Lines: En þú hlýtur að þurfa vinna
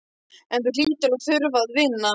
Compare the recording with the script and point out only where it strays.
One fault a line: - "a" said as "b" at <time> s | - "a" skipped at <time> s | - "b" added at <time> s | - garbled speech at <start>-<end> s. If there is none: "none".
- "að" added at 1.7 s